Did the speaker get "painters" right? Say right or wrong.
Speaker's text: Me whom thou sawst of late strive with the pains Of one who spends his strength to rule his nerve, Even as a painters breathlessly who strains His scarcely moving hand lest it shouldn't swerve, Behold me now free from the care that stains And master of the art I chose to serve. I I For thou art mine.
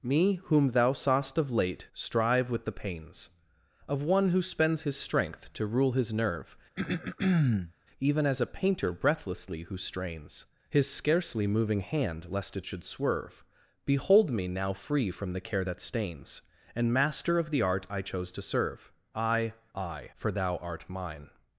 wrong